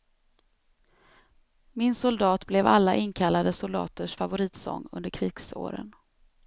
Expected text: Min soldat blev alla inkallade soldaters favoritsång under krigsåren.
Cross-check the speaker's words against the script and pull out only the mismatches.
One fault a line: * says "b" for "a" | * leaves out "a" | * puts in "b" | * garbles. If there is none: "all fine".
all fine